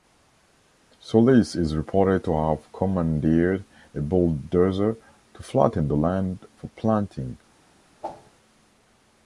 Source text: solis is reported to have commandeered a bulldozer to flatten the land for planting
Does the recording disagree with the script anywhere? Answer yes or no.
no